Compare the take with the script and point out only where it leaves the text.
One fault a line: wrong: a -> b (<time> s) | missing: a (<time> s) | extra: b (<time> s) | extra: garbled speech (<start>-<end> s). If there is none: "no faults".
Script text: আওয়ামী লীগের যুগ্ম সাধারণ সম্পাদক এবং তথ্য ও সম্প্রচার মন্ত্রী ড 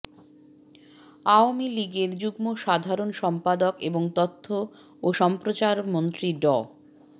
no faults